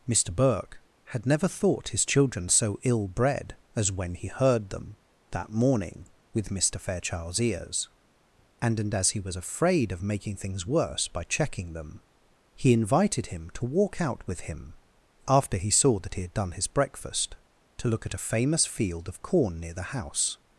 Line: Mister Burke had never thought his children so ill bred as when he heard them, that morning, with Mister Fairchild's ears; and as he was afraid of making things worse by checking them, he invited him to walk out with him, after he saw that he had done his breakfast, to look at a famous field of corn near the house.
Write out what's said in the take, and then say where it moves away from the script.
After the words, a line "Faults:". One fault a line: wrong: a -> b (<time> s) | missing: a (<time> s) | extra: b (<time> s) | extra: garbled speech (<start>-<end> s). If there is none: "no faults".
Mister Burke had never thought his children so ill bred as when he heard them, that morning, with Mister Fairchild's ears; and and as he was afraid of making things worse by checking them, he invited him to walk out with him, after he saw that he had done his breakfast, to look at a famous field of corn near the house.
Faults:
extra: and (8.8 s)